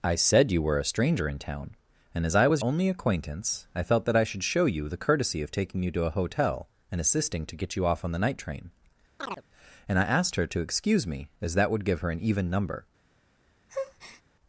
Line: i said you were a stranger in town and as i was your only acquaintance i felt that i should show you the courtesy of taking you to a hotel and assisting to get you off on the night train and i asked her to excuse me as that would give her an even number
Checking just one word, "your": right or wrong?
wrong